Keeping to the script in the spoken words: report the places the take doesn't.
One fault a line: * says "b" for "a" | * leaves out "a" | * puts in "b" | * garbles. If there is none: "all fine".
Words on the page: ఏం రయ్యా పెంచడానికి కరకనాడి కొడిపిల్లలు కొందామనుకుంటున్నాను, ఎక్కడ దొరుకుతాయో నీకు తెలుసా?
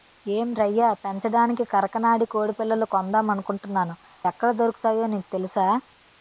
all fine